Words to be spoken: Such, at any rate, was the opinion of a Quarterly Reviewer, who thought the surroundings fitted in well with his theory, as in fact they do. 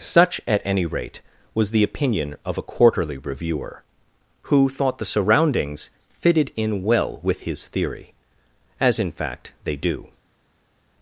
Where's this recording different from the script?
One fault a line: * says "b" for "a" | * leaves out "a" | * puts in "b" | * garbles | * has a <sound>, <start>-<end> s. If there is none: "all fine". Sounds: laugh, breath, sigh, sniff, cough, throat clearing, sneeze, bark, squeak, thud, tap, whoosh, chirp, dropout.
all fine